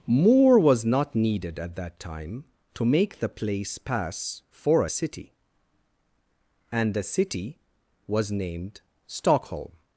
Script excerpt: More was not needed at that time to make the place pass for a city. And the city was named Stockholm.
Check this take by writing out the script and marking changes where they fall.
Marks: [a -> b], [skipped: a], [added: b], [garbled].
More was not needed at that time to make the place pass for a city. And the city was named Stockholm.